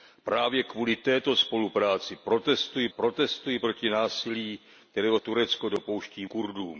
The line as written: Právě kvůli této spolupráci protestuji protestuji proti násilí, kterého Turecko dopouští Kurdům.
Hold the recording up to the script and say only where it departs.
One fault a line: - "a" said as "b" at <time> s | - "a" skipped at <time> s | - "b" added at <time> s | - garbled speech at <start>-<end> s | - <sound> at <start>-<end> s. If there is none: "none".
none